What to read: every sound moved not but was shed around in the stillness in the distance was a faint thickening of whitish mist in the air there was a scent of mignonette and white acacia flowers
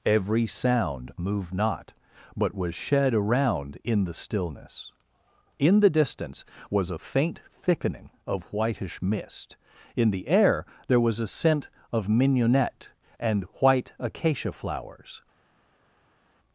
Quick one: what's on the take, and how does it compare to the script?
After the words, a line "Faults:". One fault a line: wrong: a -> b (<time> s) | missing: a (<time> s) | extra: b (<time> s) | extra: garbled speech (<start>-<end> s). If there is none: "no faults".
every sound moved not but was shed around in the stillness in the distance was a faint thickening of whitish mist in the air there was a scent of mignonette and white acacia flowers
Faults:
no faults